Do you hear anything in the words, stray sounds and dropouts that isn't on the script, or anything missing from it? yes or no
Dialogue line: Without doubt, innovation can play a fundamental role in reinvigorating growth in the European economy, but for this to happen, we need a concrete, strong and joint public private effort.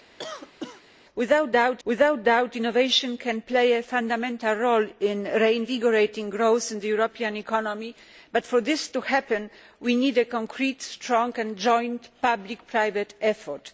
yes